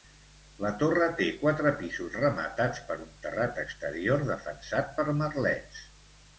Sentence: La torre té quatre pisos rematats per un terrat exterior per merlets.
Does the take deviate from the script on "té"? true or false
false